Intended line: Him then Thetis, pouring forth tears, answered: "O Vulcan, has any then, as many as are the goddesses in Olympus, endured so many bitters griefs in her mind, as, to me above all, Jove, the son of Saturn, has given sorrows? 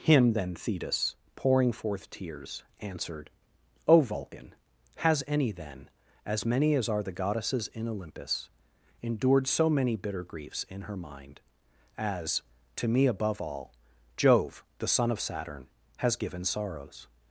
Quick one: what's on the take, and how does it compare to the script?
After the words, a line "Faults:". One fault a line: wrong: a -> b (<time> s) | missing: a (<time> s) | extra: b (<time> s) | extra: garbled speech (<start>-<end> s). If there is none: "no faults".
Him then Thetis, pouring forth tears, answered: "O Vulcan, has any then, as many as are the goddesses in Olympus, endured so many bitter griefs in her mind, as, to me above all, Jove, the son of Saturn, has given sorrows?
Faults:
wrong: bitters -> bitter (9.9 s)